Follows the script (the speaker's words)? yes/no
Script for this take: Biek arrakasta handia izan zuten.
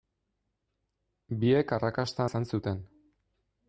no